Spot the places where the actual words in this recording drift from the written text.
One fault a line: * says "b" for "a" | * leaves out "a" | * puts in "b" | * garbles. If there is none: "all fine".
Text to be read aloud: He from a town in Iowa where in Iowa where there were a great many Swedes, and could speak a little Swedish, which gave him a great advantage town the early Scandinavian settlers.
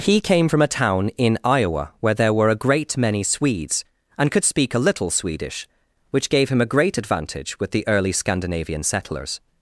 * puts in "came"
* leaves out "in Iowa where"
* says "with" for "town"